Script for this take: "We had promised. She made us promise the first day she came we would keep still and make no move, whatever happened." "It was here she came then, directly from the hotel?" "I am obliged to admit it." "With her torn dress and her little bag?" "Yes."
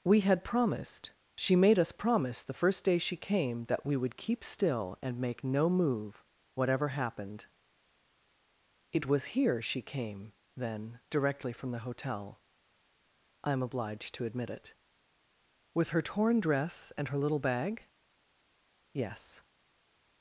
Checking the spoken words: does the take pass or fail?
fail